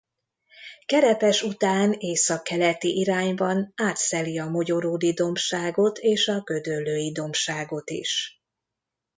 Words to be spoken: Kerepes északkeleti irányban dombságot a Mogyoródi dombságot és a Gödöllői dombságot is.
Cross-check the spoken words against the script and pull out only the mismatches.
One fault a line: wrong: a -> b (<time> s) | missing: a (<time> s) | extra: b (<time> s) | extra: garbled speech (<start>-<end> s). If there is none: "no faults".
extra: után (1.4 s)
wrong: dombságot -> átszeli (3.8 s)